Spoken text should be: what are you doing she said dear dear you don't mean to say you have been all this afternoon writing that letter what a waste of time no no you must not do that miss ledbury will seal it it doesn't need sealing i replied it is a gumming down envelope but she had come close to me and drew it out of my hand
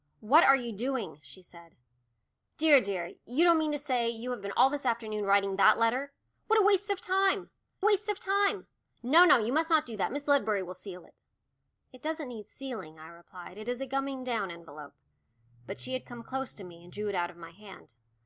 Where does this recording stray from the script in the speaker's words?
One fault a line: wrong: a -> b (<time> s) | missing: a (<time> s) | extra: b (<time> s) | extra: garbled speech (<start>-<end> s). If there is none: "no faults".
extra: waste of time (7.8 s)